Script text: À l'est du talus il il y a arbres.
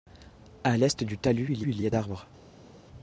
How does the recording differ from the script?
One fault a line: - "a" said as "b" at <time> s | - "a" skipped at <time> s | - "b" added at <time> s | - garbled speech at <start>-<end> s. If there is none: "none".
none